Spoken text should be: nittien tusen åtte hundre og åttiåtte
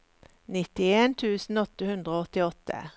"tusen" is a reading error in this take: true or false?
false